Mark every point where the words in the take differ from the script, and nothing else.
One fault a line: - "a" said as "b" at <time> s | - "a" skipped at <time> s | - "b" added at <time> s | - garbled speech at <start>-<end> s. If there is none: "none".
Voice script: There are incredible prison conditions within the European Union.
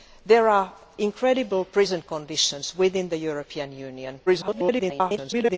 - garbled speech at 4.3-5.6 s